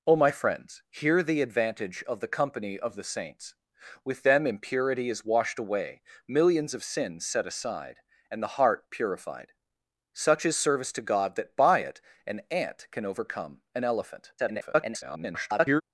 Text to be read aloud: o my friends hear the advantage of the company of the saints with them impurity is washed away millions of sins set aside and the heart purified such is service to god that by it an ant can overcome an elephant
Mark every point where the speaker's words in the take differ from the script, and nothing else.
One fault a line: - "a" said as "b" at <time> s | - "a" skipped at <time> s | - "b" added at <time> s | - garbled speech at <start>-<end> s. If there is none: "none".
- garbled speech at 14.4-15.8 s